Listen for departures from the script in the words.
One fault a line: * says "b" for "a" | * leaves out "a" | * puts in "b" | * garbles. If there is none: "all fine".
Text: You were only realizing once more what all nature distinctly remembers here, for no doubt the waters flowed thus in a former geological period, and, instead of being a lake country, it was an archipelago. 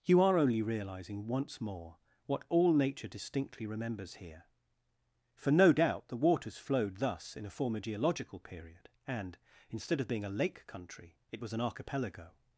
* says "are" for "were"